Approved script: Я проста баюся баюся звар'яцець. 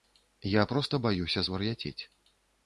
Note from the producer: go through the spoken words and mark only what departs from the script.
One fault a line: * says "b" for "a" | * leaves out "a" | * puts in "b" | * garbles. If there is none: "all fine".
* leaves out "баюся"